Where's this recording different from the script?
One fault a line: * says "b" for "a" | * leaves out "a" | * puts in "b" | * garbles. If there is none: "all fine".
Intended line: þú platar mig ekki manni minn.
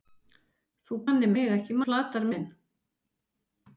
* says "manni" for "platar"
* says "platar" for "manni"